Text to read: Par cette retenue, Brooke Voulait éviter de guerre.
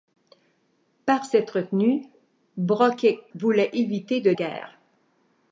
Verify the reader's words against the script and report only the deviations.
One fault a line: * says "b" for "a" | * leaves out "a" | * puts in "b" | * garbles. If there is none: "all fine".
all fine